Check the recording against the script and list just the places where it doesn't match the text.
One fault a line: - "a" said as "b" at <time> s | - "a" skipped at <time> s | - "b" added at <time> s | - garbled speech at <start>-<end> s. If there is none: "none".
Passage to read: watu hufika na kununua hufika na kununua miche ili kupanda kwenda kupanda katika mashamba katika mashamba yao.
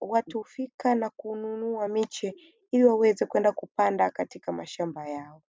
- "hufika na kununua" skipped at 1.9 s
- "kupanda" said as "waweze" at 2.8 s
- "katika mashamba" skipped at 5.1 s